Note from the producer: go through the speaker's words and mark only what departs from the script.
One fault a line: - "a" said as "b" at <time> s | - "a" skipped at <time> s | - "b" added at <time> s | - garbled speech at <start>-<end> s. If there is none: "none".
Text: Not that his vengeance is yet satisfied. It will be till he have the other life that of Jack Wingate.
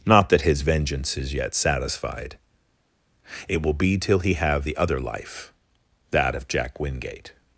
none